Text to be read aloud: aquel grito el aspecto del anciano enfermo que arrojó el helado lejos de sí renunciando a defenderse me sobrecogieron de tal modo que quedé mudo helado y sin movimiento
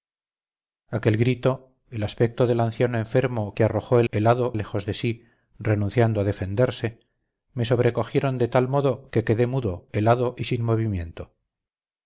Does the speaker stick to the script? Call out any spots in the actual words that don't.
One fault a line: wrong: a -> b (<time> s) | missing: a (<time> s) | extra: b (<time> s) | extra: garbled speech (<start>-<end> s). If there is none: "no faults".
no faults